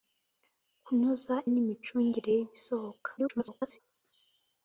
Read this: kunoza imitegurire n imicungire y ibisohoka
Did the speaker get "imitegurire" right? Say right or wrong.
wrong